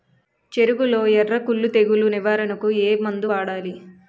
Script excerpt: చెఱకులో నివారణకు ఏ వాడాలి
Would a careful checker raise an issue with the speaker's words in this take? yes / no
yes